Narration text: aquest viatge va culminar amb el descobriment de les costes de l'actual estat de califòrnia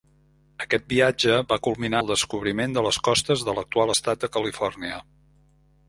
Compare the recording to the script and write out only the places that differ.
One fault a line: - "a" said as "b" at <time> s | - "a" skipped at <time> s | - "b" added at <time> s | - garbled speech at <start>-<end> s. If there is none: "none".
- "amb" skipped at 2.0 s